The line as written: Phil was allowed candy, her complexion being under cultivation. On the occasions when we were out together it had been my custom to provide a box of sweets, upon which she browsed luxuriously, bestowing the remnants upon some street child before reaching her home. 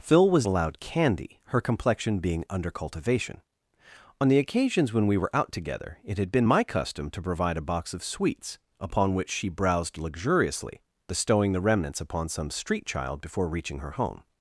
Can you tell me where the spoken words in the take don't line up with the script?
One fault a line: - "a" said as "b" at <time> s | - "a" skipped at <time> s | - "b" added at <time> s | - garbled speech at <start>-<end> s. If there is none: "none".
none